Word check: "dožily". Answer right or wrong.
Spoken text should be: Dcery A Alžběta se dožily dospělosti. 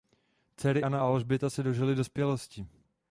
right